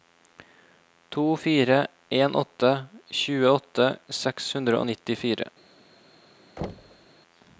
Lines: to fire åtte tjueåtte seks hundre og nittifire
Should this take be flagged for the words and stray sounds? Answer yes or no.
yes